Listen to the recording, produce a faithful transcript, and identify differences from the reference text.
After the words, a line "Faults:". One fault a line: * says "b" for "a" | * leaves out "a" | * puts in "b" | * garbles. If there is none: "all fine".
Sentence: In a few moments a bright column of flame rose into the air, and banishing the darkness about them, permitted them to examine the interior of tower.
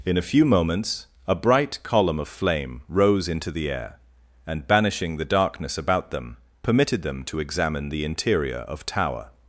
In a few moments a bright column of flame rose into the air, and banishing the darkness about them, permitted them to examine the interior of tower.
Faults:
all fine